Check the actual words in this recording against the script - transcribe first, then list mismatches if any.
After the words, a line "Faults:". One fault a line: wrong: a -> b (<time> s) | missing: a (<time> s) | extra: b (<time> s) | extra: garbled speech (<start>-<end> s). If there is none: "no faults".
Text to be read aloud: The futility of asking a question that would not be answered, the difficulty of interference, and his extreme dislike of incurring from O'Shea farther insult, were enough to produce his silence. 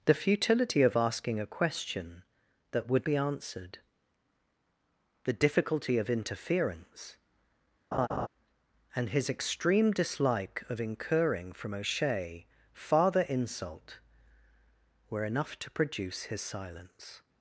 The futility of asking a question that would be answered, the difficulty of interference, and his extreme dislike of incurring from O'Shea farther insult, were enough to produce his silence.
Faults:
missing: not (3.1 s)